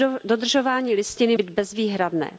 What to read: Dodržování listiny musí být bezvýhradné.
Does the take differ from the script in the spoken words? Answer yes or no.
yes